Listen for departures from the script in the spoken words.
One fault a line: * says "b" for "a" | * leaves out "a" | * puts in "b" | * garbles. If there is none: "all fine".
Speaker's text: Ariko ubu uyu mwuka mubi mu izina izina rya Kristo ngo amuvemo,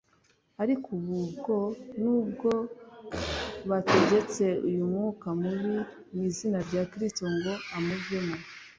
* puts in "bwo nubwo bategetse"
* leaves out "izina"